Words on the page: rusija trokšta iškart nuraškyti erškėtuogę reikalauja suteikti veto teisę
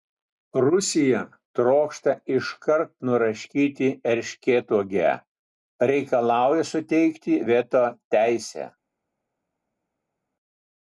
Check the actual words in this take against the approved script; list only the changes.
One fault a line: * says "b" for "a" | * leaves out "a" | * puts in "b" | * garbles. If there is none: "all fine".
all fine